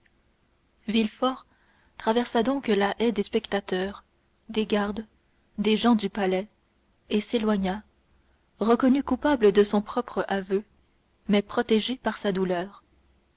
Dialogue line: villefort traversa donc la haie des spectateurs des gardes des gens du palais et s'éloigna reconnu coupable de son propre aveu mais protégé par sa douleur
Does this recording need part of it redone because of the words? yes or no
no